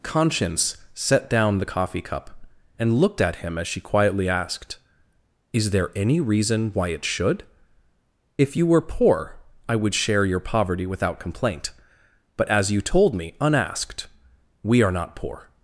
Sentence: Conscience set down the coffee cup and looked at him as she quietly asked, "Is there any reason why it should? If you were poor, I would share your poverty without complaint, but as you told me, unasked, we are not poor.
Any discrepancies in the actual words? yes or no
no